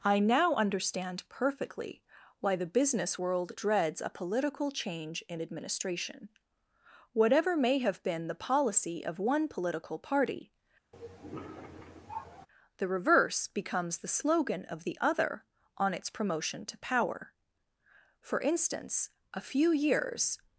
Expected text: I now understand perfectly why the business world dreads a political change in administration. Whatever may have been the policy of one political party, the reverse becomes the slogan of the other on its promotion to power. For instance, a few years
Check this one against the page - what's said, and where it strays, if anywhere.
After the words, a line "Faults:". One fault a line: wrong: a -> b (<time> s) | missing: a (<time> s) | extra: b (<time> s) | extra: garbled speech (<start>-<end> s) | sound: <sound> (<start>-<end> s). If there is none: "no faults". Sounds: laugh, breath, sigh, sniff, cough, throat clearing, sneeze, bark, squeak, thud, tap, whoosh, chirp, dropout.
I now understand perfectly why the business world dreads a political change in administration. Whatever may have been the policy of one political party, the reverse becomes the slogan of the other on its promotion to power. For instance, a few years
Faults:
sound: cough (10.9-12.5 s)